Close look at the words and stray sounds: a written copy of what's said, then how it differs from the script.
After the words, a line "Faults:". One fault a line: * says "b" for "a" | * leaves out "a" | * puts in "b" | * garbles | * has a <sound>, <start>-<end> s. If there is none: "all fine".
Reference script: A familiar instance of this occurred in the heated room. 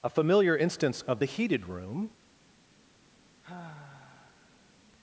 A familiar instance of the heated room.
Faults:
* leaves out "this occurred in"
* has a sigh, 3.4-4.7 s